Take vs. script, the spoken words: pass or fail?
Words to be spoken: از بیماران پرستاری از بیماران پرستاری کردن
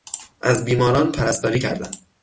fail